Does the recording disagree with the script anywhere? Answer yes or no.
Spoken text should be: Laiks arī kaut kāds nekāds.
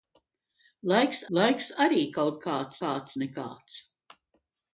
yes